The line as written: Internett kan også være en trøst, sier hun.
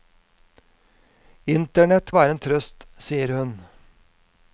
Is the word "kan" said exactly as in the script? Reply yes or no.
no